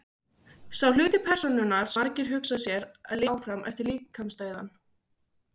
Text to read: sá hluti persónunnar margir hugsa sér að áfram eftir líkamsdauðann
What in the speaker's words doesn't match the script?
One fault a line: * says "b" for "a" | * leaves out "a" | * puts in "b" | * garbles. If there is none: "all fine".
all fine